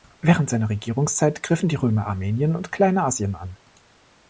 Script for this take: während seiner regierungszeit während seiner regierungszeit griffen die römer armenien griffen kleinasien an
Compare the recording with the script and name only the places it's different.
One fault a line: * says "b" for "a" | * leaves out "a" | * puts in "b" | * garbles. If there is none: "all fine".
* leaves out "während seiner regierungszeit"
* says "und" for "griffen"